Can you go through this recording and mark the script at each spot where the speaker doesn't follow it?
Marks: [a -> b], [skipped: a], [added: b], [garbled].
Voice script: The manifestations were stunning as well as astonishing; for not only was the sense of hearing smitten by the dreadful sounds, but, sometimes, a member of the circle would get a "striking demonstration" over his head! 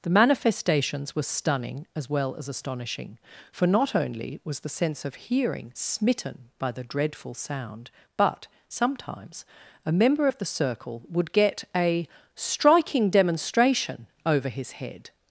The manifestations were stunning as well as astonishing; for not only was the sense of hearing smitten by the dreadful [sounds, -> sound] but, sometimes, a member of the circle would get a "striking demonstration" over his head!